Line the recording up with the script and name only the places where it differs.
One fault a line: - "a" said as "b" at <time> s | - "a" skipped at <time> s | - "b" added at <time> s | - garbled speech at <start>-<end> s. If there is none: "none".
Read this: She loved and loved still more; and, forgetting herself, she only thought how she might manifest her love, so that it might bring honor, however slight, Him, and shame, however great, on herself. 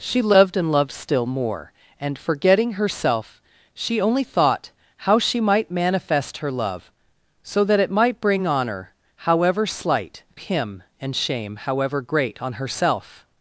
none